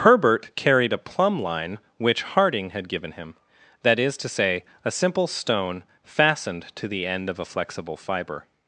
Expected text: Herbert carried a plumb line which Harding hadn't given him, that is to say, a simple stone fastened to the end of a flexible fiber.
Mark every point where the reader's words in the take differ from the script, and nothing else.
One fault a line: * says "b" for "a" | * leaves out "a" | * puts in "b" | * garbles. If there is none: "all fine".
* says "had" for "hadn't"